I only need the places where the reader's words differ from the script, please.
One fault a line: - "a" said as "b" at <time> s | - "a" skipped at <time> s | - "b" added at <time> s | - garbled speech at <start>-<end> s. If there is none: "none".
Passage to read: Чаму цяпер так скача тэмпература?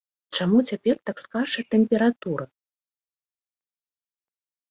none